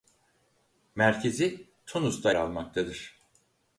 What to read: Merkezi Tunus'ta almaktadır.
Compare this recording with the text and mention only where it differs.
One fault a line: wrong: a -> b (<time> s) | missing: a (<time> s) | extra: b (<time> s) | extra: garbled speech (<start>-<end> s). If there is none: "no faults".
no faults